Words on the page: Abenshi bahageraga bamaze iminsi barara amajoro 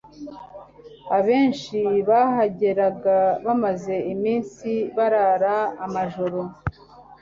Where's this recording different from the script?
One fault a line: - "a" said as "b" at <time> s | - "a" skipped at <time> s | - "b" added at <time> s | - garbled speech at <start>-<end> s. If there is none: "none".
none